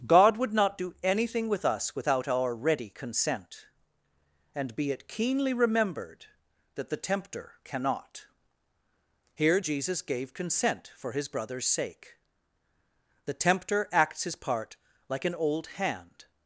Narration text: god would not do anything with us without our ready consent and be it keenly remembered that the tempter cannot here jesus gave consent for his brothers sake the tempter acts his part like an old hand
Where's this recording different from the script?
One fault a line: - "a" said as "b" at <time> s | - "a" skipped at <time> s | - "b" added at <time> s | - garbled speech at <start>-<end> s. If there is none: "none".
none